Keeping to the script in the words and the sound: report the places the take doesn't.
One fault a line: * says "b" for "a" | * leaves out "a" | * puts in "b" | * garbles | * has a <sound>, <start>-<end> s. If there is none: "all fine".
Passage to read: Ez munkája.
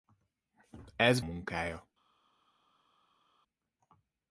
all fine